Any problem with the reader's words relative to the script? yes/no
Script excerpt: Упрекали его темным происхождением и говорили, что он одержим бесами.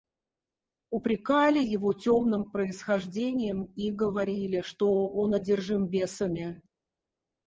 no